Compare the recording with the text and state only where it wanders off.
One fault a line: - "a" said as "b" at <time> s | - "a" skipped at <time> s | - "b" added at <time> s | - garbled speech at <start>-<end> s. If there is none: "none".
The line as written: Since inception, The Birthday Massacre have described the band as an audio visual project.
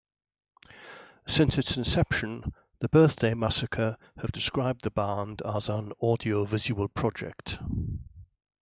- "its" added at 1.6 s